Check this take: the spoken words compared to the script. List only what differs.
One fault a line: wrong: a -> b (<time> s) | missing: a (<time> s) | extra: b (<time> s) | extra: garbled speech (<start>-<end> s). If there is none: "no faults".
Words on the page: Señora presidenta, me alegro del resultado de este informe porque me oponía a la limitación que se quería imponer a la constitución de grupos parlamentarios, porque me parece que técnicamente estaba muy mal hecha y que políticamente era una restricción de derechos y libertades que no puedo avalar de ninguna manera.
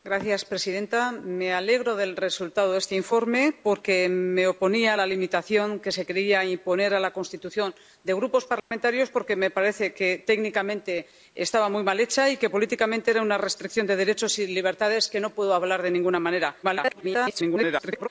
extra: garbled speech (16.6-18.1 s)